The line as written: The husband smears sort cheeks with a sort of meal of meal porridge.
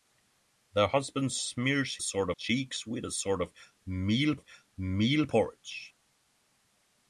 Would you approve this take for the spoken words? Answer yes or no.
yes